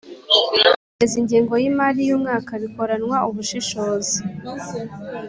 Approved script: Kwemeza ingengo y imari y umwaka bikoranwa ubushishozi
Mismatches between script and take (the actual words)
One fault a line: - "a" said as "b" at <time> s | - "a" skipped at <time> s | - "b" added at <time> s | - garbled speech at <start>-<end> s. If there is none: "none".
none